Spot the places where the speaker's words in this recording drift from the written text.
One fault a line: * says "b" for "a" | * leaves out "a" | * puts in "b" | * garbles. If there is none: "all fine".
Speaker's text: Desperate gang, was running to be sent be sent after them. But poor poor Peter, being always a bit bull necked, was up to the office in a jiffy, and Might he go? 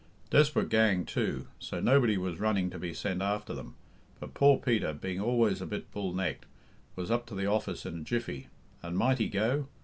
* puts in "too so nobody"
* leaves out "be sent"
* leaves out "poor"